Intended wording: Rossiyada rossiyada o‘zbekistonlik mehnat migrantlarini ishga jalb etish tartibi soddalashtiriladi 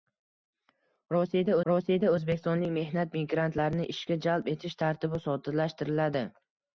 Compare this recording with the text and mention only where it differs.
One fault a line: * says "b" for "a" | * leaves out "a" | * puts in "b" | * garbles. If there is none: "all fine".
all fine